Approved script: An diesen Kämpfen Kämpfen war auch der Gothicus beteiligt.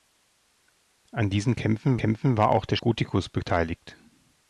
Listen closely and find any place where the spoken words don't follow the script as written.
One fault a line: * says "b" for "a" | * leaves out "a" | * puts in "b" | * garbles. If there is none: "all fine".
all fine